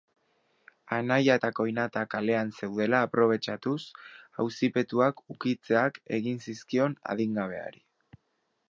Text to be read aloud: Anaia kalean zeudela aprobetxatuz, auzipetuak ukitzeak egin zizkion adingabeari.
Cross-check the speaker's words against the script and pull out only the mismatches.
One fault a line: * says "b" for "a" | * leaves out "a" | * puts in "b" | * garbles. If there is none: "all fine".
* puts in "eta koinata"